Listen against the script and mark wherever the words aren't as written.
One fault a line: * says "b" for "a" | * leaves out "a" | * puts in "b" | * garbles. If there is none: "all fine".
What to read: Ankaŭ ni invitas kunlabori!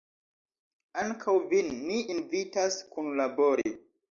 * puts in "vin"